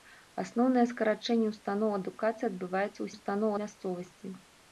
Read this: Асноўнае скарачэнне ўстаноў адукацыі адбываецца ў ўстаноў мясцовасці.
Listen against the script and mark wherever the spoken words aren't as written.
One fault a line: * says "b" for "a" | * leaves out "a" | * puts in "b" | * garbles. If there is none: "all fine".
all fine